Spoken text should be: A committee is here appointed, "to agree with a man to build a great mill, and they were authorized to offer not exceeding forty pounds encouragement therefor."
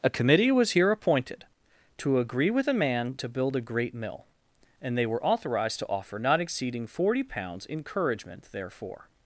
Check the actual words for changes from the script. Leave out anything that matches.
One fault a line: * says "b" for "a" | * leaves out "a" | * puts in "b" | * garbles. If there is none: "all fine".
* says "was" for "is"